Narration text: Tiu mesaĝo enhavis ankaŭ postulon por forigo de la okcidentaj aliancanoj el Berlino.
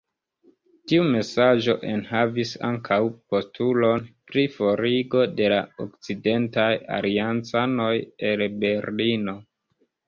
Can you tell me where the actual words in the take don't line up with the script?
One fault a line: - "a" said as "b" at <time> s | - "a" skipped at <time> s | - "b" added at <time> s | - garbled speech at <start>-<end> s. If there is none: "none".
- "por" said as "pri" at 4.3 s